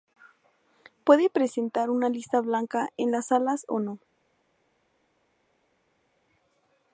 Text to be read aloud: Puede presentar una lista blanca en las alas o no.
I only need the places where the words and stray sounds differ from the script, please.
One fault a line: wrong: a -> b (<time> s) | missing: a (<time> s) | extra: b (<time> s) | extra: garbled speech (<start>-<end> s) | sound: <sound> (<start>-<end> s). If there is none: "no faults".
no faults